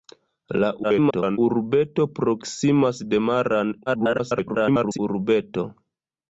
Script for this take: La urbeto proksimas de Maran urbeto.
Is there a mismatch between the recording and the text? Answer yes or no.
yes